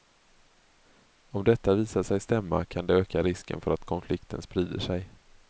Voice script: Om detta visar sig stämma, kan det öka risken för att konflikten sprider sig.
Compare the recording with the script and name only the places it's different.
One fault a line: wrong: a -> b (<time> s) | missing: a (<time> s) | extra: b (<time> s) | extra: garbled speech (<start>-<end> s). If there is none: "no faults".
no faults